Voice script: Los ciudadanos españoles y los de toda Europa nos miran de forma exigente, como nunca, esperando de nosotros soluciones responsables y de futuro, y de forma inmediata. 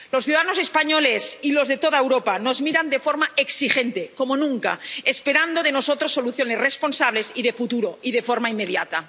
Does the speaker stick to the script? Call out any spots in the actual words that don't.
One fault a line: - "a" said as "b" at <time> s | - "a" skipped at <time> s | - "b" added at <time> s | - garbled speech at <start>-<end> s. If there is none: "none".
none